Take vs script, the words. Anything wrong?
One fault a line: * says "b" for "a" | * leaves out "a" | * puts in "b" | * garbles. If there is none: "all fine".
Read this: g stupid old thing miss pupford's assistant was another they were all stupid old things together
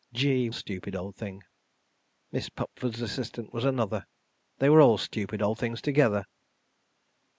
all fine